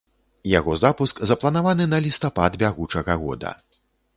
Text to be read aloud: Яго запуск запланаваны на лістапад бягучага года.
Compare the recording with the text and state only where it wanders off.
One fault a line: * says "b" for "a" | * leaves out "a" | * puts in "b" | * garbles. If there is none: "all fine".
all fine